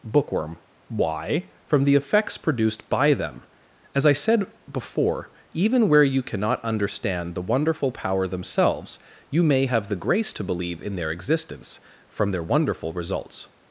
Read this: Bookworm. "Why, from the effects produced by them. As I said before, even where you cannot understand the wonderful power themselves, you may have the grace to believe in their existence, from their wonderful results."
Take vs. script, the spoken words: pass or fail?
pass